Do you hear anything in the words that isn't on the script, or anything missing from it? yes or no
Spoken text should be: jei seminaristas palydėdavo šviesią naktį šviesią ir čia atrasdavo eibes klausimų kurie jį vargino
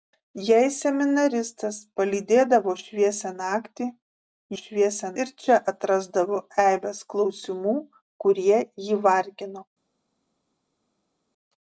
no